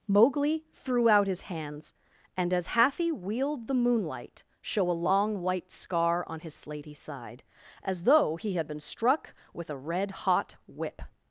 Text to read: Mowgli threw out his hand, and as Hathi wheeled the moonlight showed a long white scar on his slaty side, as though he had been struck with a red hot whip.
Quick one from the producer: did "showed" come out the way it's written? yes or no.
no